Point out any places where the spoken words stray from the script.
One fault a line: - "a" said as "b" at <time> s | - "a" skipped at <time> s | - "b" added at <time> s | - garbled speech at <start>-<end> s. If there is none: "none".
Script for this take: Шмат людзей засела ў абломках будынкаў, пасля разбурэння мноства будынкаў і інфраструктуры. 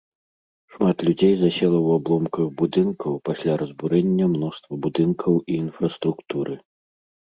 none